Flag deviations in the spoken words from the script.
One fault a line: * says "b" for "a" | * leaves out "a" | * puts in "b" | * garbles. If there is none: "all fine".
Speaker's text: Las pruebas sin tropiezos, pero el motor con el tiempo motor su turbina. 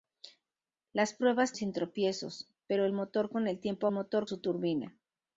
all fine